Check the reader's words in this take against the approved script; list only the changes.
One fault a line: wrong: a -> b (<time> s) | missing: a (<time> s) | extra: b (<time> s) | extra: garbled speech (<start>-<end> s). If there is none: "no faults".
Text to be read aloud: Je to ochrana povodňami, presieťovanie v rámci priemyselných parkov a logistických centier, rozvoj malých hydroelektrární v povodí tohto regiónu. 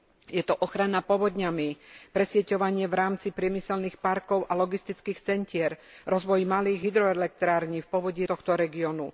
no faults